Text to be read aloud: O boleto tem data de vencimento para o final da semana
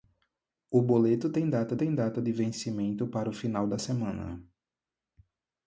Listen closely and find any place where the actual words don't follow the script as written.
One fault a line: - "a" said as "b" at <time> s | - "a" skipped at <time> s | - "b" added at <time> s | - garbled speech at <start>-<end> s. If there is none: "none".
- "tem data" added at 1.8 s